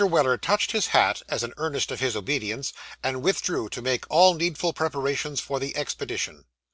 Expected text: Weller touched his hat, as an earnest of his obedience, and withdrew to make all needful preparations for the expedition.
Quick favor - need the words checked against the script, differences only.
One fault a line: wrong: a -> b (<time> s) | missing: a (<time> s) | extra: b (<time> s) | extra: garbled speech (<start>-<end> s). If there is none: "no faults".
no faults